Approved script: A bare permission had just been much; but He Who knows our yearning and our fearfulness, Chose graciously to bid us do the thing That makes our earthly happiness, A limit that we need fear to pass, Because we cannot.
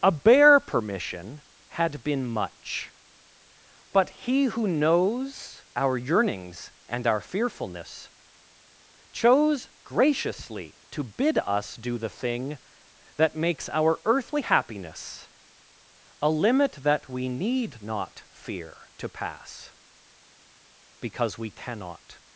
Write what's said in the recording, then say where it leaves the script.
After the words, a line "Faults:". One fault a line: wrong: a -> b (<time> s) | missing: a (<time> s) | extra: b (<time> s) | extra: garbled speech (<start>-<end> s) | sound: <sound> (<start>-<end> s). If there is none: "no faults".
A bare permission had been much; but He Who knows our yearnings and our fearfulness, Chose graciously to bid us do the thing That makes our earthly happiness, A limit that we need not fear to pass, Because we cannot.
Faults:
missing: just (2.0 s)
wrong: yearning -> yearnings (6.0 s)
extra: not (17.8 s)